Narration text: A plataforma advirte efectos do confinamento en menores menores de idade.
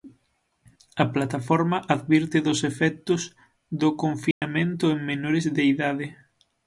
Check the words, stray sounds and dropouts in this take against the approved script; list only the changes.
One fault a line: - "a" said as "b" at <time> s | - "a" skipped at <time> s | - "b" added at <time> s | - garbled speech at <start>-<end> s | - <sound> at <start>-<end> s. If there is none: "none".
- "dos" added at 2.5 s
- dropout at 4.3-4.4 s
- "menores" skipped at 5.4 s